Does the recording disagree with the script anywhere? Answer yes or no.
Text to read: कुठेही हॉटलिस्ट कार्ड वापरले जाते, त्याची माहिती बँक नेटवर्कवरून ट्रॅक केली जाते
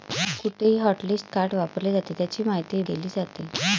yes